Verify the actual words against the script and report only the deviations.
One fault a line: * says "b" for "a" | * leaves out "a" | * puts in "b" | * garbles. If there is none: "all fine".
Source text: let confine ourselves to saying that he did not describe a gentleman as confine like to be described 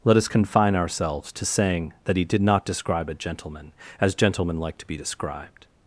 * puts in "us"
* says "gentlemen" for "confine"